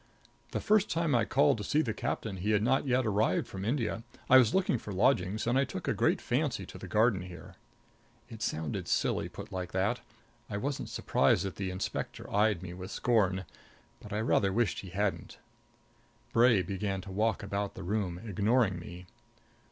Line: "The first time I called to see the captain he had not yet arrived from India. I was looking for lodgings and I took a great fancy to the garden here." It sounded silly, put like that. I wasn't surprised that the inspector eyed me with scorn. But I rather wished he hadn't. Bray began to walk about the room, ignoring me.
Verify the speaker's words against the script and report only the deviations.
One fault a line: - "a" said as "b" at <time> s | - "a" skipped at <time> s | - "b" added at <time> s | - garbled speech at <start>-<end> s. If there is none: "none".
none